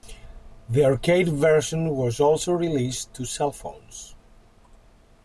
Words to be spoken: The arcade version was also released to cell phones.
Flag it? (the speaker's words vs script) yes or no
no